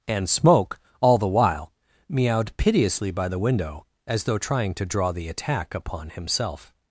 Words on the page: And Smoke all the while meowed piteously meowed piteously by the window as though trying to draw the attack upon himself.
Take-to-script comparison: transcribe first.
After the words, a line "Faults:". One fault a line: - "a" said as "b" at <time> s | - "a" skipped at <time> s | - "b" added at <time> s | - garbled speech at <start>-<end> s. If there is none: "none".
And Smoke all the while meowed piteously by the window as though trying to draw the attack upon himself.
Faults:
- "meowed piteously" skipped at 3.1 s